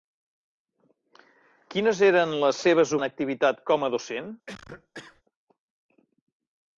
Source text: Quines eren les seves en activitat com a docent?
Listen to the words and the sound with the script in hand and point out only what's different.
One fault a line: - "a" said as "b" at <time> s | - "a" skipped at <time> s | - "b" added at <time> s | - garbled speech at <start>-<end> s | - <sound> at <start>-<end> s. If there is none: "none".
- cough at 4.5-5.2 s